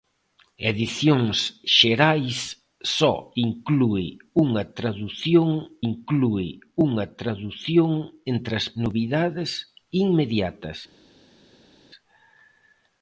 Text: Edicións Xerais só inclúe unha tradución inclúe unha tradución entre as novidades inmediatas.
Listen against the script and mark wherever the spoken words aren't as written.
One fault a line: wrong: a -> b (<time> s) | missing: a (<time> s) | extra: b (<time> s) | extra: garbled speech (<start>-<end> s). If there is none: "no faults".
no faults